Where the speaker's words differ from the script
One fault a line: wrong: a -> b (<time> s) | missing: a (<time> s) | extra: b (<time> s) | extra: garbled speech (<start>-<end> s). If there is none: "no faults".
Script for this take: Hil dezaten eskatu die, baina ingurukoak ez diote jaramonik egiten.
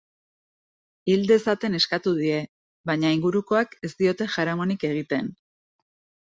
no faults